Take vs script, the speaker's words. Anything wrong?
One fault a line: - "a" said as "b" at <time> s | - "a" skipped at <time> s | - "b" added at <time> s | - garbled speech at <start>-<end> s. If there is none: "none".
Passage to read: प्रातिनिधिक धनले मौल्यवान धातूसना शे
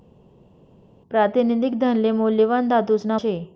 none